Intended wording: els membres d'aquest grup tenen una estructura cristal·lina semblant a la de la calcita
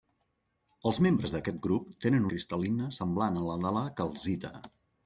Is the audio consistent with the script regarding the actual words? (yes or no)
no